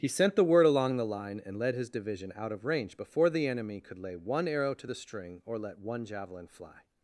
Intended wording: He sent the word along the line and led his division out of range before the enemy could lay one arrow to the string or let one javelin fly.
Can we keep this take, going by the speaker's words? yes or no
yes